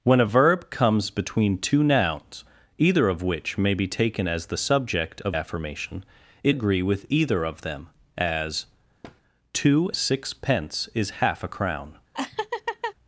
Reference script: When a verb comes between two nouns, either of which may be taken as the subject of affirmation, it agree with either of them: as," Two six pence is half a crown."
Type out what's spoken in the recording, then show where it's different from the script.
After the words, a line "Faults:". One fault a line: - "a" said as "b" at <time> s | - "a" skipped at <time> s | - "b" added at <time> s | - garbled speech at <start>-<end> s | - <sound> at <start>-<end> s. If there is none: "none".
When a verb comes between two nouns, either of which may be taken as the subject of affirmation, it agree with either of them: as," Two six pence is half a crown."
Faults:
- thud at 9.0-9.2 s
- laugh at 12.1-12.9 s